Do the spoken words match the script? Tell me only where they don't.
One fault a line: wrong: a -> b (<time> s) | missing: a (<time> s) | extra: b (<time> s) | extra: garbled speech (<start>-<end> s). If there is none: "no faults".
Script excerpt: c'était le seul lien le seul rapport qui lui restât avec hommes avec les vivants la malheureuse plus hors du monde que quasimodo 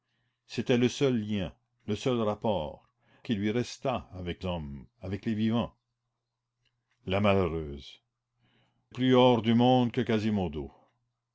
no faults